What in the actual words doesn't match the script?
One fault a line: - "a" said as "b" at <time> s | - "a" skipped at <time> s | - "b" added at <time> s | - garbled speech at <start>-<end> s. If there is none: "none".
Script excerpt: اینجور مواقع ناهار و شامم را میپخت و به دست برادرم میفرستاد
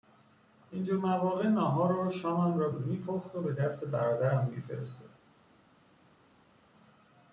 none